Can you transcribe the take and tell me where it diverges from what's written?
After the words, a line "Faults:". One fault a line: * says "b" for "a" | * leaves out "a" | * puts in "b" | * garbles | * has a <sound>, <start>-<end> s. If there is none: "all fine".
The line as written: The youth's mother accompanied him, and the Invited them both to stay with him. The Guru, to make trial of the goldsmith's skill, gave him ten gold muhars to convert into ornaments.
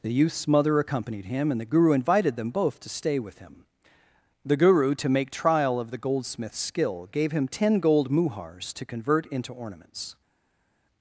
The youth's mother accompanied him, and the Guru invited them both to stay with him. The Guru, to make trial of the goldsmith's skill, gave him ten gold muhars to convert into ornaments.
Faults:
* puts in "Guru"